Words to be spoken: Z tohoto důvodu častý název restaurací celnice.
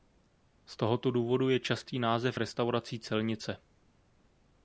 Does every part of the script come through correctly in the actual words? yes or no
no